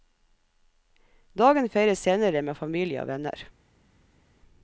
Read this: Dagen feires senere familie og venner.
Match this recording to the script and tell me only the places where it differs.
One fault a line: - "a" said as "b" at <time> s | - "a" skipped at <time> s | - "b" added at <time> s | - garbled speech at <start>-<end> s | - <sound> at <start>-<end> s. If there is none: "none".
- "med" added at 2.4 s